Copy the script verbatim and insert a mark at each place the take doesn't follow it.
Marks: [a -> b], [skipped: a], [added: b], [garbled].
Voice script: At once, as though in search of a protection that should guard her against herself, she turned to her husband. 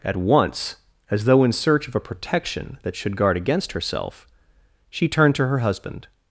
At once, as though in search of a protection that should guard [skipped: her] against herself, she turned to her husband.